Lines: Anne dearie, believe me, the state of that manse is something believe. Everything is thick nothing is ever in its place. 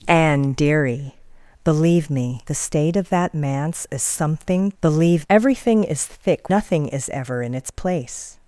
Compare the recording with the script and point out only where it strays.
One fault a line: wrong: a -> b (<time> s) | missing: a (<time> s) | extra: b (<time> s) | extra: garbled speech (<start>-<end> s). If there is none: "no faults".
no faults